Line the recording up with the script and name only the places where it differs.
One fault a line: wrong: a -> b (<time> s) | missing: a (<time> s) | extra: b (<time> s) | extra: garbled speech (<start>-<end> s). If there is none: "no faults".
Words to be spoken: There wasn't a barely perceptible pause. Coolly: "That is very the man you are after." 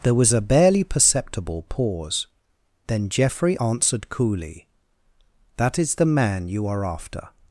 wrong: wasn't -> was (0.1 s)
extra: Then Geoffrey answered (2.9 s)
missing: very (5.9 s)